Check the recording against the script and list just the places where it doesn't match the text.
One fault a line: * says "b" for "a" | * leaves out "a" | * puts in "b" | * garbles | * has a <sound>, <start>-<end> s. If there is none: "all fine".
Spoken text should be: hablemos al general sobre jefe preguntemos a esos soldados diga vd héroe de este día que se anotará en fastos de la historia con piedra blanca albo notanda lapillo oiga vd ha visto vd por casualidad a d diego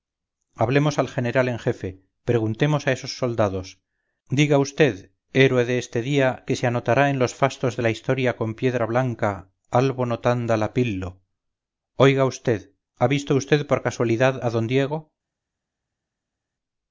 * says "en" for "sobre"
* puts in "los"